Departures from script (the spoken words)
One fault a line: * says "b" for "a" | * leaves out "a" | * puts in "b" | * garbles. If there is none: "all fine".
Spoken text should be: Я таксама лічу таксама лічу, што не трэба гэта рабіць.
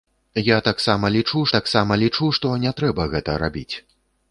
all fine